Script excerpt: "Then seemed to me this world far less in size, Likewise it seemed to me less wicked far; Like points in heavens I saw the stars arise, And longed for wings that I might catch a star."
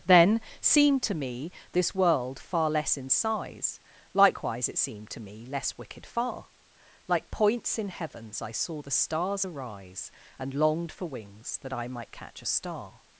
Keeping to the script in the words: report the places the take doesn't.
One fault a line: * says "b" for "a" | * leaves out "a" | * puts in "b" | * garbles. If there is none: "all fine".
all fine